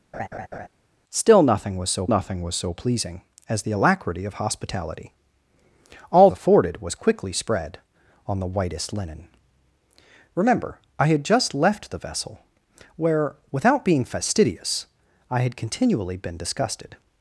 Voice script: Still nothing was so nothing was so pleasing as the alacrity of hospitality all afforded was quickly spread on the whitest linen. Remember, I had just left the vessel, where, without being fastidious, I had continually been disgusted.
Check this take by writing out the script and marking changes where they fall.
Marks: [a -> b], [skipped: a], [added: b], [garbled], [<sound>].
[laugh] Still nothing was so nothing was so pleasing as the alacrity of hospitality all afforded was quickly spread on the whitest linen. Remember, I had just left the vessel, where, without being fastidious, I had continually been disgusted.